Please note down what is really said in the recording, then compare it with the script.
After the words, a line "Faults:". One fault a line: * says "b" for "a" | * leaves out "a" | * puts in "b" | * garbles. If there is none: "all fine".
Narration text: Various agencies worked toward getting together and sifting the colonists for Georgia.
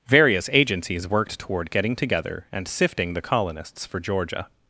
Various agencies worked toward getting together and sifting the colonists for Georgia.
Faults:
all fine